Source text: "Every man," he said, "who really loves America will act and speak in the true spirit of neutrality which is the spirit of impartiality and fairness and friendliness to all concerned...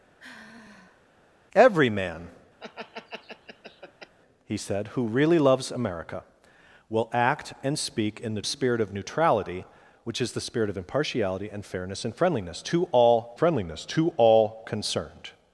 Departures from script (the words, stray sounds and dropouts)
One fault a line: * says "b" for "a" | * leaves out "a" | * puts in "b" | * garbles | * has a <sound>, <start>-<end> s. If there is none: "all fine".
* has a sigh, 0.2-1.0 s
* has a laugh, 2.6-4.1 s
* leaves out "true"
* puts in "friendliness to all"